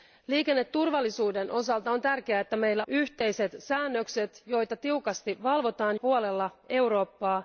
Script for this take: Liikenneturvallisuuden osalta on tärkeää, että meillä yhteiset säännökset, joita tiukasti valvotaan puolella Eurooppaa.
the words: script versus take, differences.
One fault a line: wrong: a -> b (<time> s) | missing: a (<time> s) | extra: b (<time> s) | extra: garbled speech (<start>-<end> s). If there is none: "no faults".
no faults